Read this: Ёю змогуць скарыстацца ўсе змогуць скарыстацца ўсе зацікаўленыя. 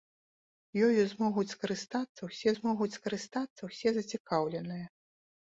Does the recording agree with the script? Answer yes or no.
yes